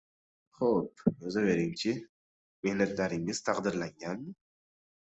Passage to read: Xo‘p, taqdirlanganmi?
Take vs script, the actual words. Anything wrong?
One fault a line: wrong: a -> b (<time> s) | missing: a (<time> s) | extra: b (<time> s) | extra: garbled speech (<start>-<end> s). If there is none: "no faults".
extra: yozavering chi Mehnatlaringiz (1.2 s)